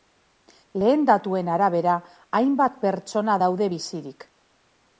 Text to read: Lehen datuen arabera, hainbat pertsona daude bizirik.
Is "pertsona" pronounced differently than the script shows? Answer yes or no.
no